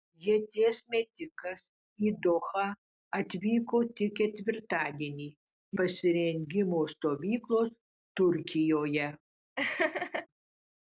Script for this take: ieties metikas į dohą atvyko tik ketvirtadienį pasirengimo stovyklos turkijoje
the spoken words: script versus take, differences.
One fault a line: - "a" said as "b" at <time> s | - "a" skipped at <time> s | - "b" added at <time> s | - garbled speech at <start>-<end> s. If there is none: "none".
none